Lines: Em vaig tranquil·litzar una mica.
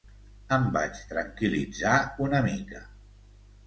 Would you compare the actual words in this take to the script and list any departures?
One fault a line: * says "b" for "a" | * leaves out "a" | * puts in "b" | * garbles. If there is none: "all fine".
all fine